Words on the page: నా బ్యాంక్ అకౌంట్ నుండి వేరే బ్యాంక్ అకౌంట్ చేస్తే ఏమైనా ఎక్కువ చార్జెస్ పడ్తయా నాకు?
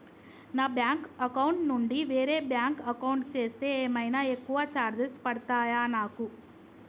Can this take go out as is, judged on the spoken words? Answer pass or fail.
pass